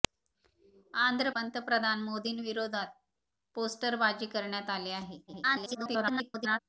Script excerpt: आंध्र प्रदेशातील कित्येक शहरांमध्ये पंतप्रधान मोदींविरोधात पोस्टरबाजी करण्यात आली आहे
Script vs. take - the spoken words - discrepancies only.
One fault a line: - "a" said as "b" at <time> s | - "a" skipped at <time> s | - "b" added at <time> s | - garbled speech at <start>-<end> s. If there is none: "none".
- "प्रदेशातील कित्येक शहरांमध्ये" skipped at 1.3 s
- garbled speech at 5.3-6.6 s